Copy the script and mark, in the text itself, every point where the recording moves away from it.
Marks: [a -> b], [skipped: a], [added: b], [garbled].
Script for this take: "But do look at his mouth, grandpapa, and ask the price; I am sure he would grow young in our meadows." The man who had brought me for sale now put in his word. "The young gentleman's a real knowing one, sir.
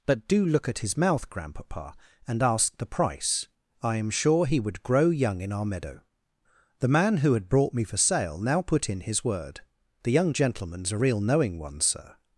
"But do look at his mouth, grandpapa, and ask the price; I am sure he would grow young in our [meadows." -> meadow] The man who had brought me for sale now put in his word. "The young gentleman's a real knowing one, sir.